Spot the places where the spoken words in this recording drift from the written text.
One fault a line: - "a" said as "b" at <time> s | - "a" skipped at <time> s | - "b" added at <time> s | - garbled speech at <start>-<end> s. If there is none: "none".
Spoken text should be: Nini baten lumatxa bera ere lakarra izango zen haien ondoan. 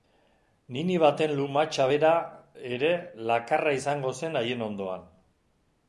none